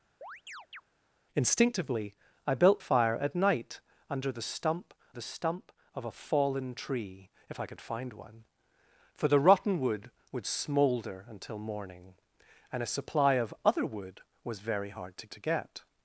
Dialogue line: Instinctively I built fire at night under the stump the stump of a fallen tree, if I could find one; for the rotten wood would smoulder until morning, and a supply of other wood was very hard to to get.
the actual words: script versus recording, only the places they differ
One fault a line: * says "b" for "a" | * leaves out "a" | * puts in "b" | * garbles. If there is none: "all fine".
all fine